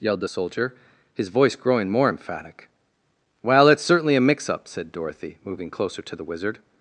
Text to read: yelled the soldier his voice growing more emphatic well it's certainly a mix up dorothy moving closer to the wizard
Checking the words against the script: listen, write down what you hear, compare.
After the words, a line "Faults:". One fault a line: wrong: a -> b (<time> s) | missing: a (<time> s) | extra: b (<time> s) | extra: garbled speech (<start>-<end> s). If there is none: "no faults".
yelled the soldier his voice growing more emphatic well it's certainly a mix up said dorothy moving closer to the wizard
Faults:
extra: said (4.7 s)